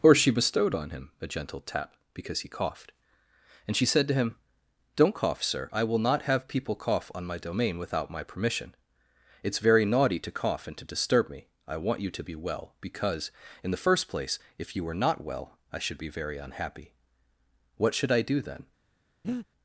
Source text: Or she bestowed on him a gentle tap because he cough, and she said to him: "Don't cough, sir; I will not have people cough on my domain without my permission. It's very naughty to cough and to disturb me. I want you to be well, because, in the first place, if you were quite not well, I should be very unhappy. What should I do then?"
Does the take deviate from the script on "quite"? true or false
true